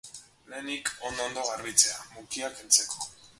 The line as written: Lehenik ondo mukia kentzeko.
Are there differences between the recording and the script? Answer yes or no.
yes